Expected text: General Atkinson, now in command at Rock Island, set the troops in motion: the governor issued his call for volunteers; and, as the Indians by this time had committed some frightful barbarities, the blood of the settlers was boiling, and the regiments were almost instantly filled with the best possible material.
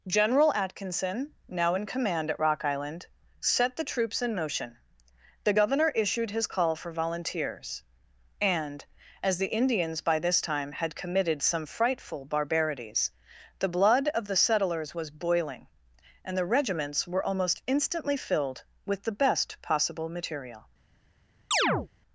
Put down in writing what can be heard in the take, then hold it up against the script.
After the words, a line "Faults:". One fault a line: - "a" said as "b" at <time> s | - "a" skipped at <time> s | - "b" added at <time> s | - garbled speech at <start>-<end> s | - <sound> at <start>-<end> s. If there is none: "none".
General Atkinson, now in command at Rock Island, set the troops in motion: the governor issued his call for volunteers; and, as the Indians by this time had committed some frightful barbarities, the blood of the settlers was boiling, and the regiments were almost instantly filled with the best possible material.
Faults:
- chirp at 21.5-21.9 s